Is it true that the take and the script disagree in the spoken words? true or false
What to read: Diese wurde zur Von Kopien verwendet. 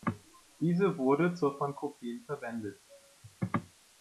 false